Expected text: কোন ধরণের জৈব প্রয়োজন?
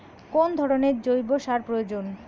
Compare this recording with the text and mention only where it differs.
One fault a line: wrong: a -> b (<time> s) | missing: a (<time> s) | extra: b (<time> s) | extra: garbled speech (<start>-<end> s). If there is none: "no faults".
extra: সার (1.4 s)